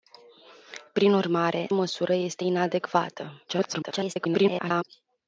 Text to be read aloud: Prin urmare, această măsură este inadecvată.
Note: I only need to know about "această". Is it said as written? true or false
false